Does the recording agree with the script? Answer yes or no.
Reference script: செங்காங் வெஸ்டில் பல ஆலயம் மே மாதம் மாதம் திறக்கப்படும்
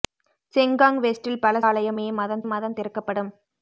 yes